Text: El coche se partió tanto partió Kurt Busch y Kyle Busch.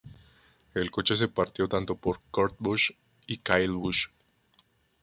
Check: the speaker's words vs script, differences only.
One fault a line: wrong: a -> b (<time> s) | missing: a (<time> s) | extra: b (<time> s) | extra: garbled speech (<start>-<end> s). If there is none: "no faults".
wrong: partió -> por (1.9 s)